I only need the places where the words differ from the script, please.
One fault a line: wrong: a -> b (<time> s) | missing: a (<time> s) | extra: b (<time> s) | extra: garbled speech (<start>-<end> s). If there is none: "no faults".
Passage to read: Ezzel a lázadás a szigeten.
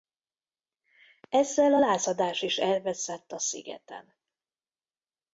extra: is elveszett (2.4 s)